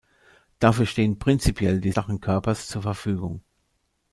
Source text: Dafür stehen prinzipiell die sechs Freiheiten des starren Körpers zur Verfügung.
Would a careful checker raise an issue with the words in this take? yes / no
yes